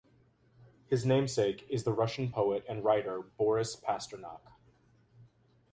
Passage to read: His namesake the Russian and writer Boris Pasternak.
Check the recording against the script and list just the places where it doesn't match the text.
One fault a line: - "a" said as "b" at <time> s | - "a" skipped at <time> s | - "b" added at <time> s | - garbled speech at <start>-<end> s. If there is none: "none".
- "is" added at 1.7 s
- "poet" added at 2.3 s